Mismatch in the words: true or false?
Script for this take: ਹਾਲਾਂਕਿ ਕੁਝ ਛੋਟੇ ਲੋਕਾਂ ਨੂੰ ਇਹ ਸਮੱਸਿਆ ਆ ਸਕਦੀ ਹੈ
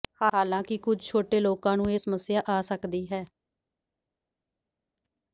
false